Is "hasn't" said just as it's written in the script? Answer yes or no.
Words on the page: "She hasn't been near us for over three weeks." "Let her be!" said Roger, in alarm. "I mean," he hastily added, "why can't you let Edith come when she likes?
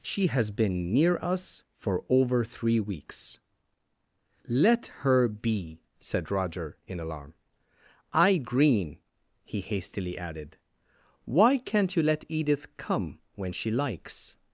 no